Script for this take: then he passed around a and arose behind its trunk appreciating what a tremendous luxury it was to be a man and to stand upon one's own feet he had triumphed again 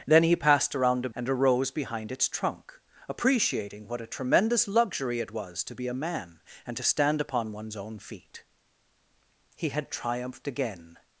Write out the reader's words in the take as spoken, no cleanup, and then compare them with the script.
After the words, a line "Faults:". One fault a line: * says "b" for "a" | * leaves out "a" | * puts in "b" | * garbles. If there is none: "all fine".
then he passed around a and arose behind its trunk appreciating what a tremendous luxury it was to be a man and to stand upon one's own feet he had triumphed again
Faults:
all fine